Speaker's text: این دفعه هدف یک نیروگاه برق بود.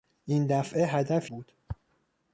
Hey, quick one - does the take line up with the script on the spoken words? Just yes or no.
no